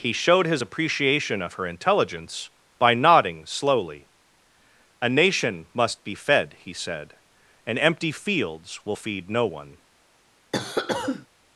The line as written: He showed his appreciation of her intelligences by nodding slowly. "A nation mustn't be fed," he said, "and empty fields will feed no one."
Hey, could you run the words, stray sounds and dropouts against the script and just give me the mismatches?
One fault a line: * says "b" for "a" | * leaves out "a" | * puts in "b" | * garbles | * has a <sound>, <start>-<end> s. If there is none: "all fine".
* says "intelligence" for "intelligences"
* says "must" for "mustn't"
* has a cough, 10.5-11.3 s